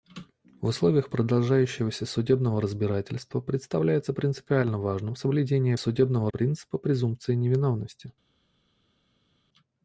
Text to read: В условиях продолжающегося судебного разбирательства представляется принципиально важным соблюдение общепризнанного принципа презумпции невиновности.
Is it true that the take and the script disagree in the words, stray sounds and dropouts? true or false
true